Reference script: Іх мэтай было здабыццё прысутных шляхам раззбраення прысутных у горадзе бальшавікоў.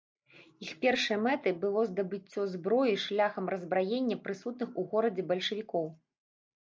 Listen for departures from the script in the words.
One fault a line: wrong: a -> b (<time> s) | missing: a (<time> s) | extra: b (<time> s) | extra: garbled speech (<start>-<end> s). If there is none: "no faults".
extra: першай (0.8 s)
wrong: прысутных -> зброі (2.5 s)